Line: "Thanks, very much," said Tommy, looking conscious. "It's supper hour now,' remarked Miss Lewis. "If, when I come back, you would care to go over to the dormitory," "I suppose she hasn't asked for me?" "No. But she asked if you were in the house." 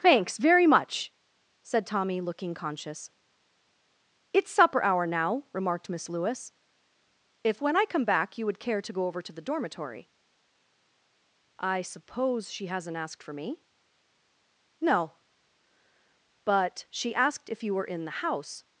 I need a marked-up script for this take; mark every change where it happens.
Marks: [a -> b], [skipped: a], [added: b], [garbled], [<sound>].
"Thanks, very much," said Tommy, looking conscious. "It's supper hour now,' remarked Miss Lewis. "If, when I come back, you would care to go over to the dormitory," "I suppose she hasn't asked for me?" "No. But she asked if you were in the house."